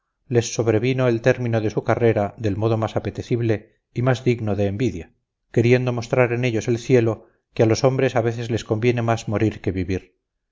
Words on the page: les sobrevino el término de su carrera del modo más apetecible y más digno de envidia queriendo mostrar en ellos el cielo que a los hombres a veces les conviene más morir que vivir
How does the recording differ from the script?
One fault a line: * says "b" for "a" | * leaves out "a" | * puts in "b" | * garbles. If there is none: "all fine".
all fine